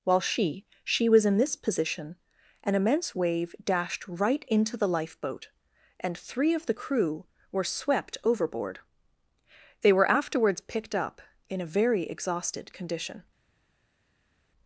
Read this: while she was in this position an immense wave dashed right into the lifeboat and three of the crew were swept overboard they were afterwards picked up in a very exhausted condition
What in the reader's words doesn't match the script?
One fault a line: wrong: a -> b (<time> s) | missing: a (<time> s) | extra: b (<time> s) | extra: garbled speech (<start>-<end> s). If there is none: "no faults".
extra: she (0.8 s)